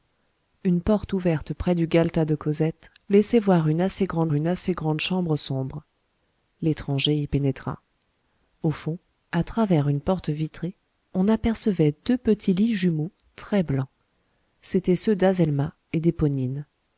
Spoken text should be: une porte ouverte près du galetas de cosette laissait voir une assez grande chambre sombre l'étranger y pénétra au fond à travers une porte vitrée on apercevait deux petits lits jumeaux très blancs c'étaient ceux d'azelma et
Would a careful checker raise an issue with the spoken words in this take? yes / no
yes